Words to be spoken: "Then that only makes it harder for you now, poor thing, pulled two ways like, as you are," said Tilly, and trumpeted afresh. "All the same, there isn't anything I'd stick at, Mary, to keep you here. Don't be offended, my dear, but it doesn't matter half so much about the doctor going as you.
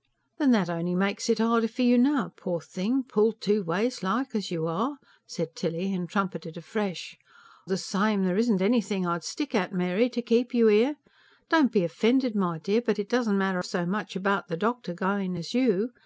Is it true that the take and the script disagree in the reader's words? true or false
true